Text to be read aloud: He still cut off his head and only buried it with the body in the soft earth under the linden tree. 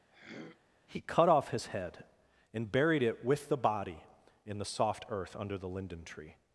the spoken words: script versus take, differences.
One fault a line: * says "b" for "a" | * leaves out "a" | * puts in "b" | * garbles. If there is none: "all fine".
* leaves out "still"
* leaves out "only"